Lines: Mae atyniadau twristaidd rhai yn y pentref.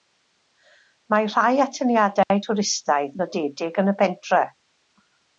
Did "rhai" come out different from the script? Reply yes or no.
yes